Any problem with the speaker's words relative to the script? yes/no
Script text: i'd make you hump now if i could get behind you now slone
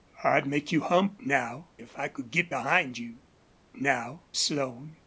no